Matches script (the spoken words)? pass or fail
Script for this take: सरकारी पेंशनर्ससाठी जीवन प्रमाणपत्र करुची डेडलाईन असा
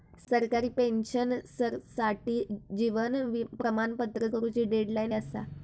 pass